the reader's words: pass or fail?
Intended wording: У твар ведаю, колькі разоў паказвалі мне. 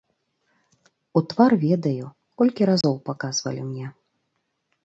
pass